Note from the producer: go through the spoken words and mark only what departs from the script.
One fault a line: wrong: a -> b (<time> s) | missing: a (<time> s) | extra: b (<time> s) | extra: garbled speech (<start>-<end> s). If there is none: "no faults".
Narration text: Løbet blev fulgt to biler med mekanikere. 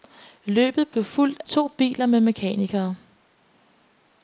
no faults